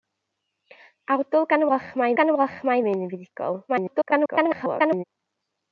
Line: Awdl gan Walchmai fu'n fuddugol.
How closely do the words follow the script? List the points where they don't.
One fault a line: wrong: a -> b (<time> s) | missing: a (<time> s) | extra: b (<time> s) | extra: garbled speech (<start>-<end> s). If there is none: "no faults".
extra: gan Walchmai (2.2 s)
extra: garbled speech (3.7-5.0 s)